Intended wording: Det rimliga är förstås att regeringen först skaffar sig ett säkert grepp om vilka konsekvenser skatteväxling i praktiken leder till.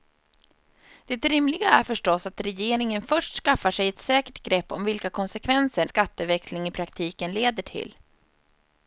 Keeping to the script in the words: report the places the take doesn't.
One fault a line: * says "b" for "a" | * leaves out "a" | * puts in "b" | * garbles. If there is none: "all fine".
all fine